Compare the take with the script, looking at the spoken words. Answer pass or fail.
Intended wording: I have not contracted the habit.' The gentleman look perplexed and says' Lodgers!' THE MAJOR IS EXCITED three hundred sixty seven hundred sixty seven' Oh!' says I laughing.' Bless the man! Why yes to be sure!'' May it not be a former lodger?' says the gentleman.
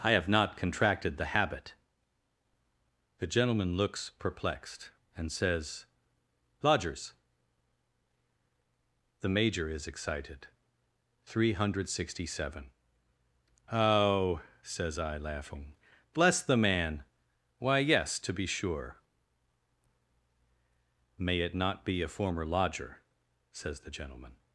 fail